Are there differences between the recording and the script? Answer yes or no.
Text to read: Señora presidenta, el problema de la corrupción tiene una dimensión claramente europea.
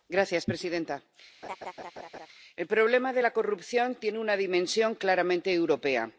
no